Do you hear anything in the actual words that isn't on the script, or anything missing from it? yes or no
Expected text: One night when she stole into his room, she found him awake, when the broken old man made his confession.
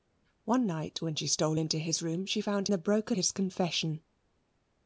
yes